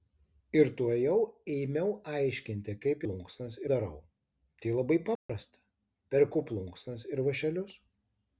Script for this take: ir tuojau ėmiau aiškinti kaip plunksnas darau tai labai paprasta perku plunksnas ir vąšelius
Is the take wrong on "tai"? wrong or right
right